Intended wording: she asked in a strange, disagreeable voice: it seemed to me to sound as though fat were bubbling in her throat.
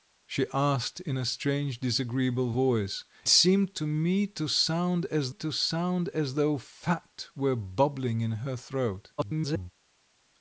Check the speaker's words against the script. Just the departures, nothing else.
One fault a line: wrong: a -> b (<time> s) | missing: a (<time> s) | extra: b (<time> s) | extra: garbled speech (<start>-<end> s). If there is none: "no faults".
missing: it (3.0 s)
extra: to sound as (5.3 s)
extra: garbled speech (9.2-9.7 s)